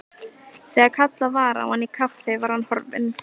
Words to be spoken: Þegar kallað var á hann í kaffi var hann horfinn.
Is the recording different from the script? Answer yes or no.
no